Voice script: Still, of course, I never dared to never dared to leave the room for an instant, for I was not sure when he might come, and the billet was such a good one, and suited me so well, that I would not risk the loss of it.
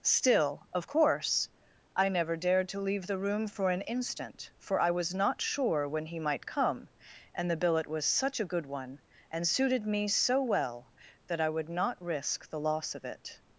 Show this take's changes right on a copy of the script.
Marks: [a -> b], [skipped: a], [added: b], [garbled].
Still, of course, I never dared to [skipped: never dared to] leave the room for an instant, for I was not sure when he might come, and the billet was such a good one, and suited me so well, that I would not risk the loss of it.